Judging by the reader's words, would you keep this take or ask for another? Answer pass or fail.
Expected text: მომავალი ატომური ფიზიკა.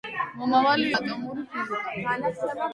pass